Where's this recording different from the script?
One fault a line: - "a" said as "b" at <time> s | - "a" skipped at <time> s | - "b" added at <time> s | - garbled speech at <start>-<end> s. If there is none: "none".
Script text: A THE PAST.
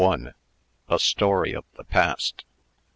- "STORY OF" added at 1.0 s